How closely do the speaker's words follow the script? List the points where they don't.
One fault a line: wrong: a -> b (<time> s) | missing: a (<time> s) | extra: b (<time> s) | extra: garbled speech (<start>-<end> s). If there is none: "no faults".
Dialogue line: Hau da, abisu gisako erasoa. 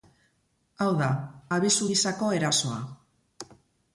no faults